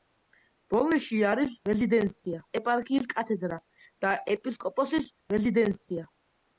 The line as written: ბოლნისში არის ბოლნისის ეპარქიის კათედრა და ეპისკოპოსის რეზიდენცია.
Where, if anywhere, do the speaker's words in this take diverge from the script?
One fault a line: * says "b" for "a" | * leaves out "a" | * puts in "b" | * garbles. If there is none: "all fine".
* says "რეზიდენცია" for "ბოლნისის"